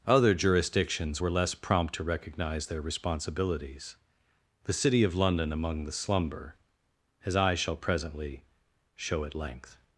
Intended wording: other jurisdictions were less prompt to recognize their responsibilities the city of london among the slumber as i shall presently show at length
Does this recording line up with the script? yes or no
yes